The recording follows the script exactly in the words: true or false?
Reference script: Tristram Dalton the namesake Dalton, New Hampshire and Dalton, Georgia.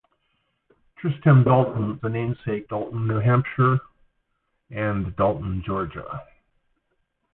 true